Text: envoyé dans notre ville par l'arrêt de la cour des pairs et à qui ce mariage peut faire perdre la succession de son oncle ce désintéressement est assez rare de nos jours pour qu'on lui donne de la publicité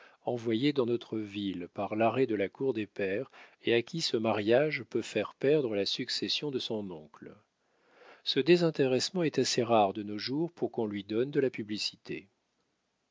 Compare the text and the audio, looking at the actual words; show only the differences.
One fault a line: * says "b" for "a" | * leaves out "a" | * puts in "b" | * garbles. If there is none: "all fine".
all fine